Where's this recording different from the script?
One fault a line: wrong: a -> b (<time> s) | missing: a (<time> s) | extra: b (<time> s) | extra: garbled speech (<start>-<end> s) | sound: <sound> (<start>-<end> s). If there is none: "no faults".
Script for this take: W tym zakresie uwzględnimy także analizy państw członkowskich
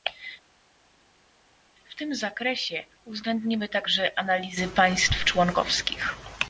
no faults